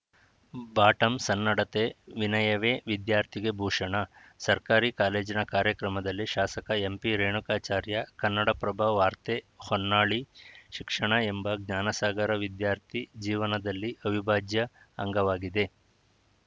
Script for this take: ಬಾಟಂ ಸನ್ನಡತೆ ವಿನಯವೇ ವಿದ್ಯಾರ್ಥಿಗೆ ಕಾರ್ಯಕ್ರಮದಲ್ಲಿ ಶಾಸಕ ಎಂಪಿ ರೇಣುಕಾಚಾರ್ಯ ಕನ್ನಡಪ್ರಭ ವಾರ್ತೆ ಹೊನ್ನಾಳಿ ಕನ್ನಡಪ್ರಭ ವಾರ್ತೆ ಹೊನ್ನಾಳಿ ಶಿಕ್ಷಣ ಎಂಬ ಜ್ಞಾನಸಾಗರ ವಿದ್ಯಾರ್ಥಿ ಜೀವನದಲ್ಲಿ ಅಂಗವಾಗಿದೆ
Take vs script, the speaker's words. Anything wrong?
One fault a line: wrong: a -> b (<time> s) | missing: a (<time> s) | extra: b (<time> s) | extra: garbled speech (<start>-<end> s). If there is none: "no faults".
extra: ಭೂಷಣ ಸರ್ಕಾರಿ ಕಾಲೇಜಿನ (3.6 s)
missing: ಕನ್ನಡಪ್ರಭ ವಾರ್ತೆ ಹೊನ್ನಾಳಿ (10.2 s)
extra: ಅವಿಭಾಜ್ಯ (14.0 s)